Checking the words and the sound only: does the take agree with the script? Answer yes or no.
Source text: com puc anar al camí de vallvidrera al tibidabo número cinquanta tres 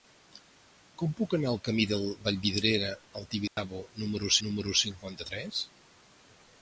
no